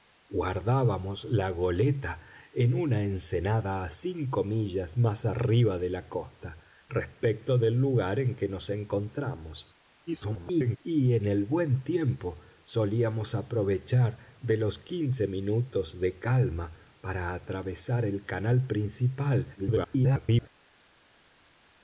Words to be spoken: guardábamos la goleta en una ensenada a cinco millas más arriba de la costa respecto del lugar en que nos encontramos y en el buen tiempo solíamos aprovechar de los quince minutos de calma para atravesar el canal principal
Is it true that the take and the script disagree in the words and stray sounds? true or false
true